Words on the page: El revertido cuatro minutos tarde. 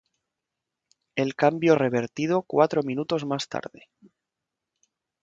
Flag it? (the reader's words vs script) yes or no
yes